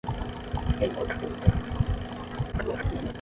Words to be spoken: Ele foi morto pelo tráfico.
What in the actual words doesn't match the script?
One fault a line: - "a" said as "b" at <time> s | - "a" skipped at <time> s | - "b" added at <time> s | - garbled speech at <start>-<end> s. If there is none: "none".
- "foi" skipped at 0.9 s
- garbled speech at 2.5-3.1 s